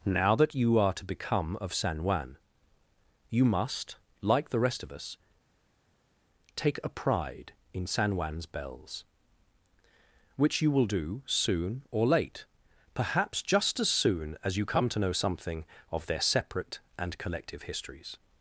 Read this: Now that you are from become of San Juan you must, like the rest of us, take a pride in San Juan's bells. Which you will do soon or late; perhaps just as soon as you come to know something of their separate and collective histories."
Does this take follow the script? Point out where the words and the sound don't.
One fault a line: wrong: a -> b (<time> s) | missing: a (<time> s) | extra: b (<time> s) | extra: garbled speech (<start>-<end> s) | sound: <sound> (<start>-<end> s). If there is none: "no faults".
wrong: from -> to (0.9 s)